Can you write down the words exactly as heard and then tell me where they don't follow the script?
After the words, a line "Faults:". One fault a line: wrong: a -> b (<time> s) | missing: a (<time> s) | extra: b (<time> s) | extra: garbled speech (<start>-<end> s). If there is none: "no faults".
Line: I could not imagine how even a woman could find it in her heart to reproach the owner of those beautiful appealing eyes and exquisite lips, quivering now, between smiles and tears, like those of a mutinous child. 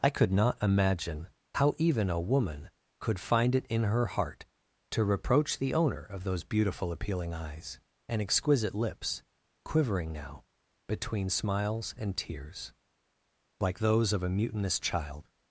I could not imagine how even a woman could find it in her heart to reproach the owner of those beautiful appealing eyes and exquisite lips, quivering now, between smiles and tears, like those of a mutinous child.
Faults:
no faults